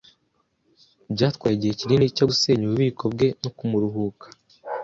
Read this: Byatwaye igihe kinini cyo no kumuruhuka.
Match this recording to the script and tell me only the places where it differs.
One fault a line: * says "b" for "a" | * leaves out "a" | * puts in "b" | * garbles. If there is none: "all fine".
* puts in "gusenya ububiko bwe"